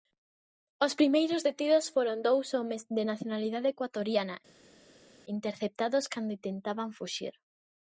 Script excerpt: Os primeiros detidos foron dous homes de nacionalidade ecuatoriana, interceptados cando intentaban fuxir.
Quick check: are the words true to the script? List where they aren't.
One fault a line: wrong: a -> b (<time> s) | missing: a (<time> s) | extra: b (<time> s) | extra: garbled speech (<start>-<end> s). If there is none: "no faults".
no faults